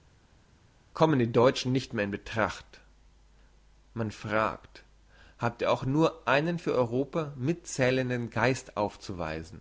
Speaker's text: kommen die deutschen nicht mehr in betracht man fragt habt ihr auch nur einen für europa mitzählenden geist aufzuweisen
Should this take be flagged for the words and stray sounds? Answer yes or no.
no